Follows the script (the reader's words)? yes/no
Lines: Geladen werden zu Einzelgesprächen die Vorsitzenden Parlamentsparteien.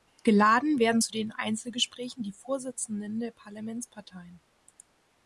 no